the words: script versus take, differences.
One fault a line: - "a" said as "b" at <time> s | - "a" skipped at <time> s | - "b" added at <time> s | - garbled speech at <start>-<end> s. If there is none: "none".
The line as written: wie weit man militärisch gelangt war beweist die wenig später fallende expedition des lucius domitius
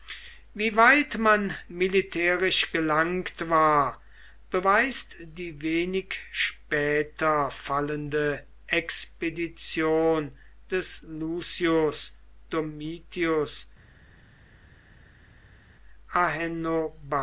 none